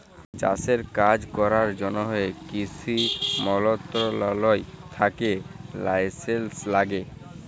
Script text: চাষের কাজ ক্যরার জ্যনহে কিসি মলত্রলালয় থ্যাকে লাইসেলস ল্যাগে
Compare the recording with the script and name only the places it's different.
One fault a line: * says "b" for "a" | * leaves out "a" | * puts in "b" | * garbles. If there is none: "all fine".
all fine